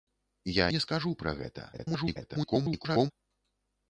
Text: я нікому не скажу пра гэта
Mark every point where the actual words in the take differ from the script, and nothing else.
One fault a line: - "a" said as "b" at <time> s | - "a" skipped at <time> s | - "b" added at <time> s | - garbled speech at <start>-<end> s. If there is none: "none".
- "нікому" skipped at 0.7 s
- garbled speech at 1.7-3.1 s